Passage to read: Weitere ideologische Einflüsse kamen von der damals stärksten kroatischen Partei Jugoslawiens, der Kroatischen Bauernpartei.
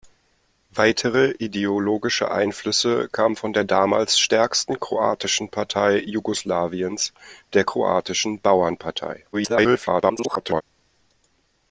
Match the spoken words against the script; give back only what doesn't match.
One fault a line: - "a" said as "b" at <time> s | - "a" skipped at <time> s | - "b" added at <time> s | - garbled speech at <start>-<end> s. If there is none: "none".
- garbled speech at 9.3-10.6 s